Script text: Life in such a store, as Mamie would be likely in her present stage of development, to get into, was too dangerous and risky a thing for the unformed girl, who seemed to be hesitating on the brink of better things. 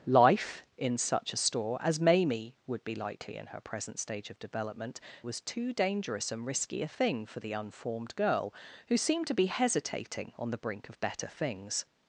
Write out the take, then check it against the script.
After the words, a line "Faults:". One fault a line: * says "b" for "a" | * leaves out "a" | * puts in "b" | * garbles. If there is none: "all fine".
Life in such a store, as Mamie would be likely in her present stage of development, was too dangerous and risky a thing for the unformed girl, who seemed to be hesitating on the brink of better things.
Faults:
* leaves out "to get into"